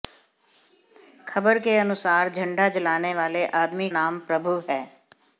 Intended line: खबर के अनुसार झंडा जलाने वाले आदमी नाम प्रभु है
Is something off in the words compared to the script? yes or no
no